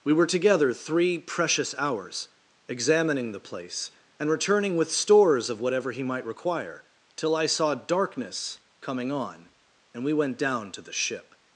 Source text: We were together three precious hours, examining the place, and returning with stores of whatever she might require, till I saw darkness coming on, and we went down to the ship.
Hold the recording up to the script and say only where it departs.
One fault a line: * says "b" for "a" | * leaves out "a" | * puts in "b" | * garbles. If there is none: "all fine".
* says "he" for "she"